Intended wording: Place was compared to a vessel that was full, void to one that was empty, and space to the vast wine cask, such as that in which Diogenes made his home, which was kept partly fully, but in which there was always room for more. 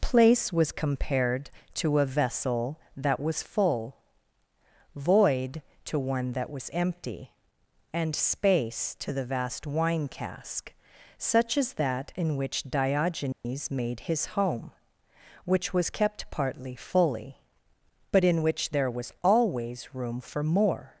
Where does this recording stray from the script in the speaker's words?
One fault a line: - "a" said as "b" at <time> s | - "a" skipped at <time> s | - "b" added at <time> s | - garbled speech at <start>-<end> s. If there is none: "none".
none